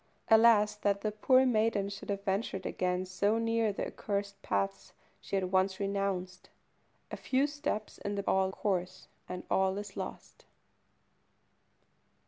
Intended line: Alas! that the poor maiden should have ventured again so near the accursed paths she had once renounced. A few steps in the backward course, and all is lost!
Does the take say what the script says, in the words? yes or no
no